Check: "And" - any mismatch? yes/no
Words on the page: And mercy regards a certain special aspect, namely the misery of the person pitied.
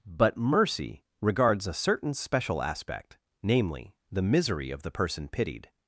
yes